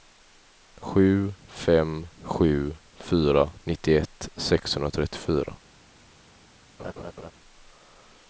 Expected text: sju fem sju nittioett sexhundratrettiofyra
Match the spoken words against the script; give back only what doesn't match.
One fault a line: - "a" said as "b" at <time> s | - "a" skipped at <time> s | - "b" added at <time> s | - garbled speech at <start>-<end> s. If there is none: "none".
- "fyra" added at 3.0 s